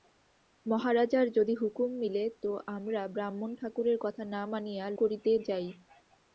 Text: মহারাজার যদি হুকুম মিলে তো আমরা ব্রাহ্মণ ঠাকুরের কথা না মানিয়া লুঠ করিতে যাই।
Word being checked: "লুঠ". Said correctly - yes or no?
no